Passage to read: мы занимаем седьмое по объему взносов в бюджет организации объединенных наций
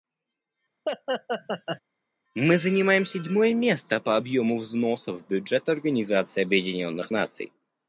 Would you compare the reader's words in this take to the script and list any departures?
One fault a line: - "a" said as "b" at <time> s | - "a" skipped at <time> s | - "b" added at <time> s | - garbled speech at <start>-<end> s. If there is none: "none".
- "место" added at 3.5 s